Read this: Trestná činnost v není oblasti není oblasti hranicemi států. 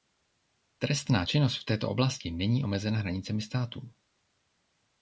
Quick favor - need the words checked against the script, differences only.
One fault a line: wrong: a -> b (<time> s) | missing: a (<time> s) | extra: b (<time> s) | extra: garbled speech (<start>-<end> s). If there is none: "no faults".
wrong: není -> této (1.6 s)
wrong: oblasti -> omezena (2.6 s)